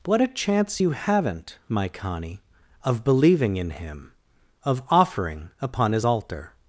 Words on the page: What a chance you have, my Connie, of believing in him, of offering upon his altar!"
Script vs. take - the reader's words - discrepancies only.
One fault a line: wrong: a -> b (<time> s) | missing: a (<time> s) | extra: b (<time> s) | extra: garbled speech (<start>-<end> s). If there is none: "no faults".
wrong: have -> haven't (0.9 s)